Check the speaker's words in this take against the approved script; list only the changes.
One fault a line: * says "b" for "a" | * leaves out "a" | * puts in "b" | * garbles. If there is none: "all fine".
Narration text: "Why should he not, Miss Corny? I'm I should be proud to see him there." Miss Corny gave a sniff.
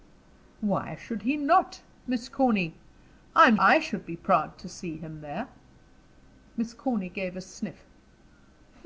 all fine